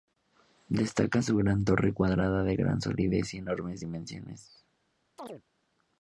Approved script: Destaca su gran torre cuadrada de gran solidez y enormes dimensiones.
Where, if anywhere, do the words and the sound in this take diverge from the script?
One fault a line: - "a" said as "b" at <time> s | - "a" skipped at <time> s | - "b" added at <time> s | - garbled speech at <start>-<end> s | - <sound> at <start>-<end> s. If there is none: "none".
- chirp at 5.2-5.4 s